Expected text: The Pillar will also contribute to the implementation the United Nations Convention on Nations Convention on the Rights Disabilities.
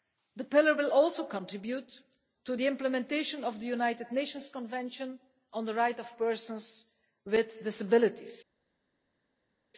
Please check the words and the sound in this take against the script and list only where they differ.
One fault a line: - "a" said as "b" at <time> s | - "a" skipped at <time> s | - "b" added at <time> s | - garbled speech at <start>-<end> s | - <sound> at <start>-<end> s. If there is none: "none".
- "of" added at 3.4 s
- "Nations Convention on the Rights" said as "the Rights of Persons with" at 5.6 s